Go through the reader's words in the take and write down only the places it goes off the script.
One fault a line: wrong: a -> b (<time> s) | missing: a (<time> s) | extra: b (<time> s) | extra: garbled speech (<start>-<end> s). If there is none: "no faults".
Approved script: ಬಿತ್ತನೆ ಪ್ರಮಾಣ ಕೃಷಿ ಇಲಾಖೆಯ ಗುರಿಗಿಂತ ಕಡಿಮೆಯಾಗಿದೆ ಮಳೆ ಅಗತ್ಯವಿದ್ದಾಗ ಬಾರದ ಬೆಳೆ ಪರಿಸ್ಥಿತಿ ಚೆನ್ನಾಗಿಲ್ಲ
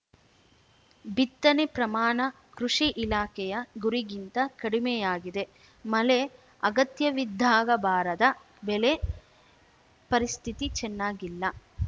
no faults